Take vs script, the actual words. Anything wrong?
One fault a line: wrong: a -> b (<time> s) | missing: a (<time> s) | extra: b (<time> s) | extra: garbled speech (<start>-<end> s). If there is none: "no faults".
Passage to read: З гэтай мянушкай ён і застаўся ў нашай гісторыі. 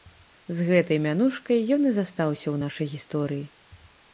no faults